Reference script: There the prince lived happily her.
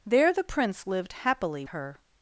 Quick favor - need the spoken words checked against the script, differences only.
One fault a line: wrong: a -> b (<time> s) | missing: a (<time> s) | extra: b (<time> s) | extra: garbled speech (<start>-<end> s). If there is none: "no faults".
no faults